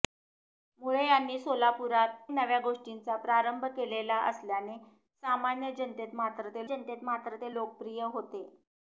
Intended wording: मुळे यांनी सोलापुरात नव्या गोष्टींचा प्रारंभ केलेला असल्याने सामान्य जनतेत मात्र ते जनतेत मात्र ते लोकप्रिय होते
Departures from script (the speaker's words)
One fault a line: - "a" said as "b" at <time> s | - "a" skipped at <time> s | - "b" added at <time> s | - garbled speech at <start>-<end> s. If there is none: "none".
none